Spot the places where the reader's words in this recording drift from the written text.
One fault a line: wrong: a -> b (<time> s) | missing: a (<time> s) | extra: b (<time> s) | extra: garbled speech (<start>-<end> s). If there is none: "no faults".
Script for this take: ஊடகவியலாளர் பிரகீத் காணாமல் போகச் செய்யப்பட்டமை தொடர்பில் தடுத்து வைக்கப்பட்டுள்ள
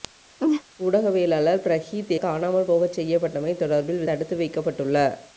no faults